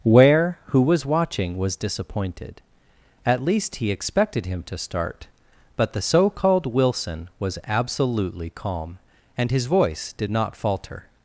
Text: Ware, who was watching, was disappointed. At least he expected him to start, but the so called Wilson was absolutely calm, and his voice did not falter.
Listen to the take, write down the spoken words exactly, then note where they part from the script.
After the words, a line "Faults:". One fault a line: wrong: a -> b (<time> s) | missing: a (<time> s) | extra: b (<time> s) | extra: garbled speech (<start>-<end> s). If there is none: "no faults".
Ware, who was watching, was disappointed. At least he expected him to start, but the so called Wilson was absolutely calm, and his voice did not falter.
Faults:
no faults